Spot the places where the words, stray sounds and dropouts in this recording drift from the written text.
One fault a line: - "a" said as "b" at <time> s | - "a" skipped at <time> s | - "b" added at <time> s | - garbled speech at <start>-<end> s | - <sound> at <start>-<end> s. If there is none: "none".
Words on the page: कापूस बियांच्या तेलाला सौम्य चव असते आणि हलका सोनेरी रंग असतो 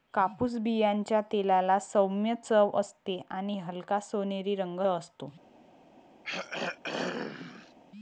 - throat clearing at 6.2-7.7 s